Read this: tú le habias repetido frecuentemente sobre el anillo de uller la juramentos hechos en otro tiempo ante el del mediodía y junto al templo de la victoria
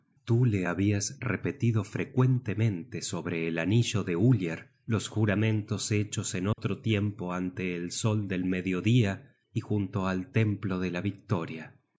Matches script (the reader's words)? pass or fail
fail